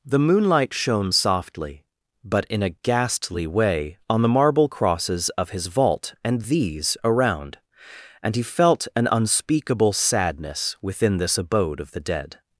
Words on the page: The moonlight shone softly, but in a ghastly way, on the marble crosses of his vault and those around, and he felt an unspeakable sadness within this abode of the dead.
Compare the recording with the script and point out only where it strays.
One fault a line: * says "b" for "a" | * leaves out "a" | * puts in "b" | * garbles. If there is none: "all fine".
* says "these" for "those"